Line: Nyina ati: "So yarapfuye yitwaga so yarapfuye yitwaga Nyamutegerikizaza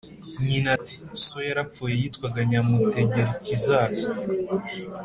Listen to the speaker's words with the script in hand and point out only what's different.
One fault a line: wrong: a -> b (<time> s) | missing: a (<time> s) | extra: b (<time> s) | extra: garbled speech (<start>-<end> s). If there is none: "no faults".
missing: so yarapfuye yitwaga (2.4 s)